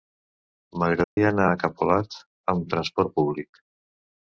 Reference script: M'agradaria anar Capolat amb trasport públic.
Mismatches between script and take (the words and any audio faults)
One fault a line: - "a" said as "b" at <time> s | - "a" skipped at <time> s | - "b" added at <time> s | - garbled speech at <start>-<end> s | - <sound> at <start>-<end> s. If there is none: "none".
- dropout at 1.0-1.2 s
- "a" added at 1.5 s